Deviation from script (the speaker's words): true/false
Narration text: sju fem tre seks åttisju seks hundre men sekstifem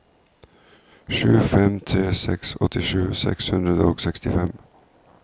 true